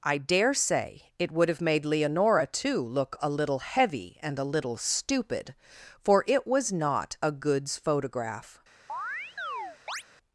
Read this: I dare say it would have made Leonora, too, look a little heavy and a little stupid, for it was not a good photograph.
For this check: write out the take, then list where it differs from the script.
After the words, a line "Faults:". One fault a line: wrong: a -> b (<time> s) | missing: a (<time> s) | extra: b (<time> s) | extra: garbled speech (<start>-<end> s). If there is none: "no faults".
I dare say it would have made Leonora, too, look a little heavy and a little stupid, for it was not a goods photograph.
Faults:
wrong: good -> goods (7.3 s)